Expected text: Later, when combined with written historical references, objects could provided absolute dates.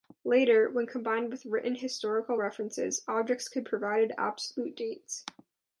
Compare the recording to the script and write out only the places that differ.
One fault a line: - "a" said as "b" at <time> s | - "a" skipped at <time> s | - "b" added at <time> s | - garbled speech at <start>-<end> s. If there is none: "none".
none